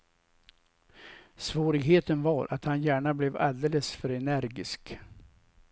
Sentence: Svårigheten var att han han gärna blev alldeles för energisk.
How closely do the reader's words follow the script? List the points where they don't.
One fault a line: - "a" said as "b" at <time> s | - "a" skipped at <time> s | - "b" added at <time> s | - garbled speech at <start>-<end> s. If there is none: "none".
- "han" skipped at 2.8 s